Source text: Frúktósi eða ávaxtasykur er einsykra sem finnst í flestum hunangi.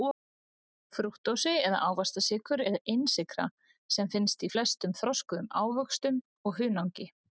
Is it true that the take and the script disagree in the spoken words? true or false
true